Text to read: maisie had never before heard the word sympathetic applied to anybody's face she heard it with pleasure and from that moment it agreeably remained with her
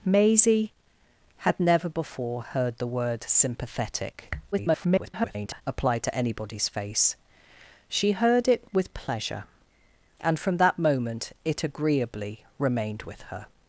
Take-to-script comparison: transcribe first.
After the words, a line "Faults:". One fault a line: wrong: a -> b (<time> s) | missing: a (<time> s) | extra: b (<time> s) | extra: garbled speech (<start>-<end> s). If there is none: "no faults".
maisie had never before heard the word sympathetic [garbled] applied to anybody's face she heard it with pleasure and from that moment it agreeably remained with her
Faults:
extra: garbled speech (4.5-5.6 s)